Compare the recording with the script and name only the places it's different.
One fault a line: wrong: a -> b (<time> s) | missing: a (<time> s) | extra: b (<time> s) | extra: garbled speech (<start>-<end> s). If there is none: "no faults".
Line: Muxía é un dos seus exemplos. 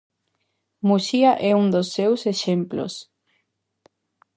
no faults